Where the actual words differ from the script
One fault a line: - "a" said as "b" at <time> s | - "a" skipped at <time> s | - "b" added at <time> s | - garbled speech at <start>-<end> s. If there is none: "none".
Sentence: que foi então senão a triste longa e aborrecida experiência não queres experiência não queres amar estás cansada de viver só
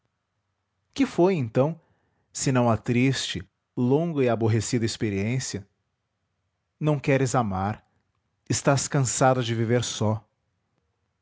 - "experiência não queres" skipped at 7.3 s